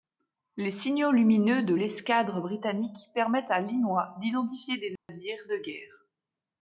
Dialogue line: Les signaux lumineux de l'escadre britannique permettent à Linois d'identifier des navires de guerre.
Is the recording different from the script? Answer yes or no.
no